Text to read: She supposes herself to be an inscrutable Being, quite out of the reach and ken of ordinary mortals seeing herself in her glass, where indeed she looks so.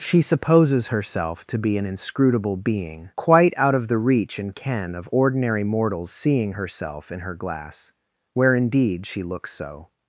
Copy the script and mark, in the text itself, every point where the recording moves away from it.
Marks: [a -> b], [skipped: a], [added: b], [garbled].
She supposes herself to be an inscrutable Being, quite out of the reach and ken of ordinary mortals seeing herself in her glass, where indeed she looks so.